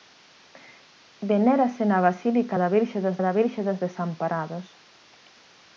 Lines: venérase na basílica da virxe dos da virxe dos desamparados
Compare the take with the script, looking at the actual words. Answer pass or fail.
pass